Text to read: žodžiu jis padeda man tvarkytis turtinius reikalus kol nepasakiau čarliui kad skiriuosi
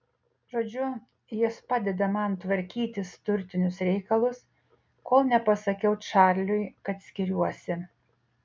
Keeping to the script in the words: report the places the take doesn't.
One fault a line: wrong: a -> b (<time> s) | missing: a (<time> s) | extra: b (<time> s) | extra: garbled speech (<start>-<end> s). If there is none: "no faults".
no faults